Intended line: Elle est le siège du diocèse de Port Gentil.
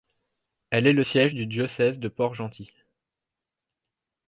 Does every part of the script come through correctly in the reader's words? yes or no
yes